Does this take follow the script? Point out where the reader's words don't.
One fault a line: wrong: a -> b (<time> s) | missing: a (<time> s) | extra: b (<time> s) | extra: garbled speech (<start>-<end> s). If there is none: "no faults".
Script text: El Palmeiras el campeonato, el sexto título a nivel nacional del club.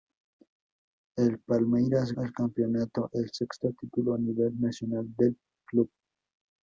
no faults